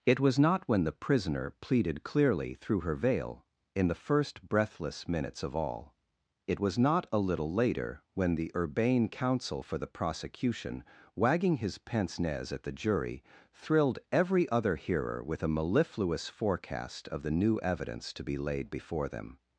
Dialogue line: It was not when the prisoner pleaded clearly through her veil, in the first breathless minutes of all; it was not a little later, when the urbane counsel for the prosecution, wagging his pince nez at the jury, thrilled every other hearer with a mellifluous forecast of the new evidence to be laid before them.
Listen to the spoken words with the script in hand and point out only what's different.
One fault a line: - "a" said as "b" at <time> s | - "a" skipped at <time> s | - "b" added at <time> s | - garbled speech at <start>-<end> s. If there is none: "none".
none